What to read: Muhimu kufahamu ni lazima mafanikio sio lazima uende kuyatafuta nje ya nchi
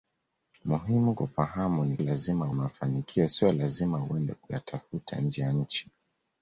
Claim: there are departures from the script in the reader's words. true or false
false